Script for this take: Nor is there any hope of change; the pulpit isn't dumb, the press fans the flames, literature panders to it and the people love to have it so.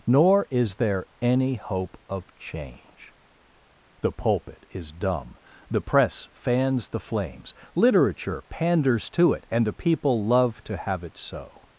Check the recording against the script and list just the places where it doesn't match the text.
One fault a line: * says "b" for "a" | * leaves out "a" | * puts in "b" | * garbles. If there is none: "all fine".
* says "is" for "isn't"